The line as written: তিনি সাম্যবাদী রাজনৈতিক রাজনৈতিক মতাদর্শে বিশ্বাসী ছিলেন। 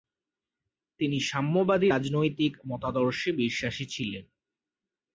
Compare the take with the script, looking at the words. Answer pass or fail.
fail